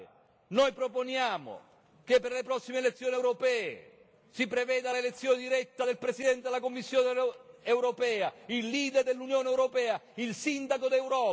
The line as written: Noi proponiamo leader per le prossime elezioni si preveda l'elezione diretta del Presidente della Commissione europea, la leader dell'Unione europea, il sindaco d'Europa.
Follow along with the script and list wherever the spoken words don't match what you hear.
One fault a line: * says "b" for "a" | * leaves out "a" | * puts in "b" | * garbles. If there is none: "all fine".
* says "che" for "leader"
* puts in "europee"
* says "il" for "la"